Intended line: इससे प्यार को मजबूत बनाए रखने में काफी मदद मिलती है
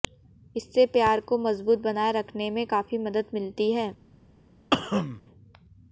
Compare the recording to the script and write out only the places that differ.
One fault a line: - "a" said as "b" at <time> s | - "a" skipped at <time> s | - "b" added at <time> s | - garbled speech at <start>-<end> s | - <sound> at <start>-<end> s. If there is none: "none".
- cough at 4.7-5.2 s